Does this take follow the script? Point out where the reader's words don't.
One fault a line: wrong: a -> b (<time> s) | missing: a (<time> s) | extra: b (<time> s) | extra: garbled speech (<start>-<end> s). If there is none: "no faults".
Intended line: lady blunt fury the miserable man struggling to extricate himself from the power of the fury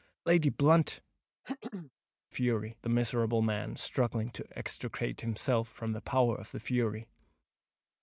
no faults